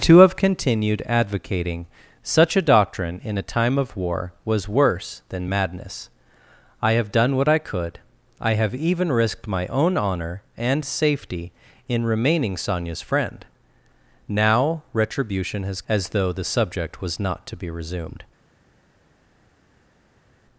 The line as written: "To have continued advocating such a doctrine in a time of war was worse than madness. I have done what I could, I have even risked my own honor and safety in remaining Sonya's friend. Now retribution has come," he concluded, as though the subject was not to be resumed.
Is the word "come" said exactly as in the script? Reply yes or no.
no